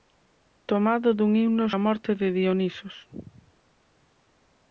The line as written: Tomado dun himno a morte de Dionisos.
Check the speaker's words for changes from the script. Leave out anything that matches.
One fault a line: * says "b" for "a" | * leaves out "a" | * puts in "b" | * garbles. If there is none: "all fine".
all fine